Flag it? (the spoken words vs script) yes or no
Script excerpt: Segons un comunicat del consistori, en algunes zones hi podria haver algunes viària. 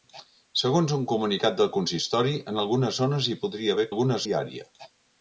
no